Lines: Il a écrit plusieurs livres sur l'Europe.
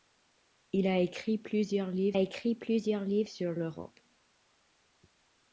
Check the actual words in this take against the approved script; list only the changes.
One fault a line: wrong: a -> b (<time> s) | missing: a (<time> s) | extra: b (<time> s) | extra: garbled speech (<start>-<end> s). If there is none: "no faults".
extra: écrit plusieurs livres (2.2 s)